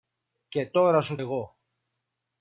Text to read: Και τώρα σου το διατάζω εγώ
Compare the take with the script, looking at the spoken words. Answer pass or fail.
fail